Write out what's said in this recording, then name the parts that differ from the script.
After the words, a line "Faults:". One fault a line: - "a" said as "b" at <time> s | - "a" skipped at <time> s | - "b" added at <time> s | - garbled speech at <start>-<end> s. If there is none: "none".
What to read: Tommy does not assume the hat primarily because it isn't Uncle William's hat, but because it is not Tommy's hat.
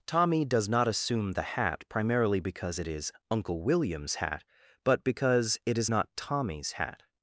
Tommy does not assume the hat primarily because it is Uncle William's hat, but because it is not Tommy's hat.
Faults:
- "isn't" said as "is" at 2.9 s